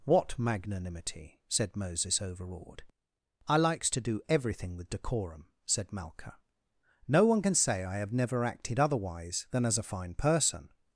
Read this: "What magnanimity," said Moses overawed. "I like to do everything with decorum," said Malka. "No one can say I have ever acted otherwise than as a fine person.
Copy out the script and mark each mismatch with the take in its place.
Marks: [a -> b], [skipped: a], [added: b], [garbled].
"What magnanimity," said Moses overawed. "I [like -> likes] to do everything with decorum," said Malka. "No one can say I have [ever -> never] acted otherwise than as a fine person.